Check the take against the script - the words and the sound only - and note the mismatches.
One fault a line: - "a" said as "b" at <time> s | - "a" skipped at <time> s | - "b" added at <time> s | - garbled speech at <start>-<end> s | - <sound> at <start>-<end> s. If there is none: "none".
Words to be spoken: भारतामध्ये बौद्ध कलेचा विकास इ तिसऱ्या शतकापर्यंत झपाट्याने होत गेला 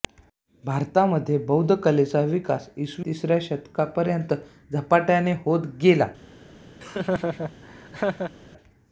- laugh at 6.8-8.3 s